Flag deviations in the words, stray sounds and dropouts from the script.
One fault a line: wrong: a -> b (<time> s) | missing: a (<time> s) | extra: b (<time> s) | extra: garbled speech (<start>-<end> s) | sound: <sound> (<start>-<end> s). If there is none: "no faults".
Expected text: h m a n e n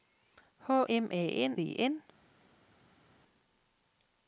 no faults